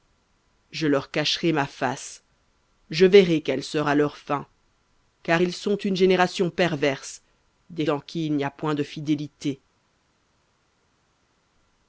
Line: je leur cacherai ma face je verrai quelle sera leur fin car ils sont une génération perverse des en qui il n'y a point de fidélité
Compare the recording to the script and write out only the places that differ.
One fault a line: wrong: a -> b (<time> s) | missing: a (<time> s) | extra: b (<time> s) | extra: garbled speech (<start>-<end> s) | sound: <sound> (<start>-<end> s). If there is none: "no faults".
no faults